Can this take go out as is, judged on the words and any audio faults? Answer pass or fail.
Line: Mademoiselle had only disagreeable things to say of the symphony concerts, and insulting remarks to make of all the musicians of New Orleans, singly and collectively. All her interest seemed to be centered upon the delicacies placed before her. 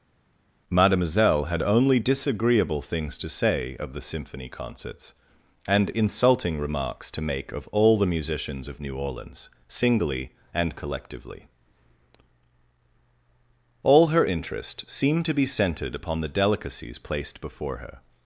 pass